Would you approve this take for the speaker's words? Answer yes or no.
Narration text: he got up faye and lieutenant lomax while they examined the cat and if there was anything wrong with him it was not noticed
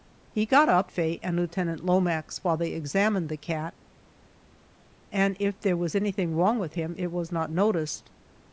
yes